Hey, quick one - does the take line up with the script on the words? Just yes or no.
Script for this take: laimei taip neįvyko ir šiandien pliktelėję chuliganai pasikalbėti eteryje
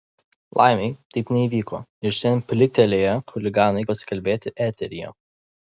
yes